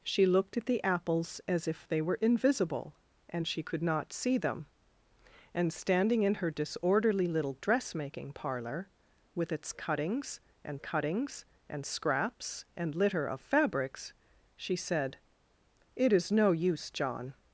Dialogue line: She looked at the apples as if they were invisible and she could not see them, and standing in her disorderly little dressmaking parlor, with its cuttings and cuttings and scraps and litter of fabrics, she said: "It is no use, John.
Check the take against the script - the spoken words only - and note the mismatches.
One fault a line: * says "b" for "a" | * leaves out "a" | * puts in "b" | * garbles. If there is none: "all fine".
all fine